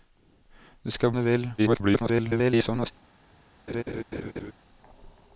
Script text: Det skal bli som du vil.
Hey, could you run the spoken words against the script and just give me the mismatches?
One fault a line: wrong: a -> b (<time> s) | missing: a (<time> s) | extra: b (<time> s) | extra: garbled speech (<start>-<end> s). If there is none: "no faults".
missing: bli som (1.1 s)
extra: garbled speech (1.6-2.9 s)